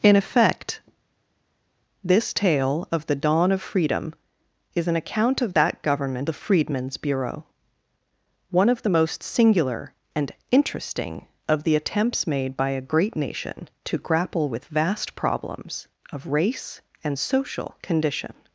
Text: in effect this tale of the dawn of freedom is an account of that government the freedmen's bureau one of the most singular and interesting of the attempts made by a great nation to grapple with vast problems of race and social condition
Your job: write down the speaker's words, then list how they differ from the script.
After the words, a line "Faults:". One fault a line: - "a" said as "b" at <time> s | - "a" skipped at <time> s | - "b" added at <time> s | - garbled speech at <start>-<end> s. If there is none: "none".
in effect this tale of the dawn of freedom is an account of that government the freedmen's bureau one of the most singular and interesting of the attempts made by a great nation to grapple with vast problems of race and social condition
Faults:
none